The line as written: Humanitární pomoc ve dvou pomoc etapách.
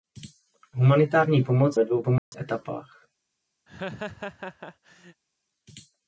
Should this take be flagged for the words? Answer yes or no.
no